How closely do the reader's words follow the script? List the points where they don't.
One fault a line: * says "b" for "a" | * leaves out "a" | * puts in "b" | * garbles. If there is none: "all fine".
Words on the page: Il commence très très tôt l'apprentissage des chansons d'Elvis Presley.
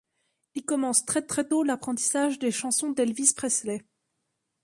all fine